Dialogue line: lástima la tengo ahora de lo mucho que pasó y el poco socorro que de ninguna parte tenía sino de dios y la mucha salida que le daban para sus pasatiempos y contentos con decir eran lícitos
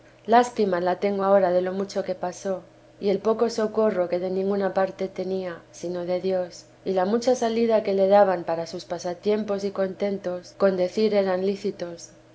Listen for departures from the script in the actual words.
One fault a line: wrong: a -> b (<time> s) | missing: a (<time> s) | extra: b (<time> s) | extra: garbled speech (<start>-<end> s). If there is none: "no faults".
no faults